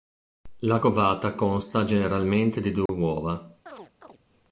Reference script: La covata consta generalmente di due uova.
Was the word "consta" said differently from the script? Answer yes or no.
no